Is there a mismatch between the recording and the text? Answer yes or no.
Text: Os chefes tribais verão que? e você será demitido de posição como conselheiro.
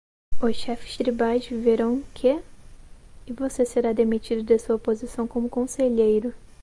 yes